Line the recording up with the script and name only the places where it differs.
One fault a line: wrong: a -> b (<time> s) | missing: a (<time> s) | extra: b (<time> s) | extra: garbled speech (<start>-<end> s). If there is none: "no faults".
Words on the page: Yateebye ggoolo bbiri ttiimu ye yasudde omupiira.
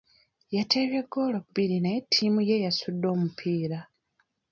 extra: naye (1.8 s)